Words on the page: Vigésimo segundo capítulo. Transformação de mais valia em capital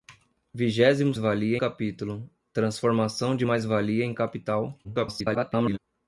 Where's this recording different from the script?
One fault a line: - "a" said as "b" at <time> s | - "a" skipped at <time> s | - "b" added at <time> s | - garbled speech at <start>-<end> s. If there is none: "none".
- "segundo" said as "valia" at 1.2 s
- garbled speech at 4.8-5.8 s